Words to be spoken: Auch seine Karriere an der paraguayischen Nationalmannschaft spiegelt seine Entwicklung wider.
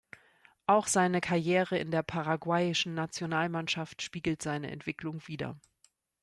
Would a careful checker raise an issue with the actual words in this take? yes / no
yes